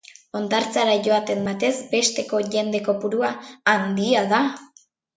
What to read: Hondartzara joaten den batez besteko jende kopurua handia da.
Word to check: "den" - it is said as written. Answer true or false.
false